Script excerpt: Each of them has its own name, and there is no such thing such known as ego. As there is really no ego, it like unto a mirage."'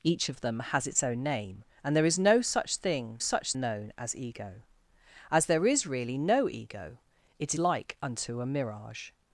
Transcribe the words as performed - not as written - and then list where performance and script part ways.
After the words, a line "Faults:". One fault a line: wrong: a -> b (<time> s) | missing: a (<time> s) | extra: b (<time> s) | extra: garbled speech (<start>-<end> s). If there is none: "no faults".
Each of them has its own name, and there is no such thing such known as ego. As there is really no ego, it like unto a mirage."'
Faults:
no faults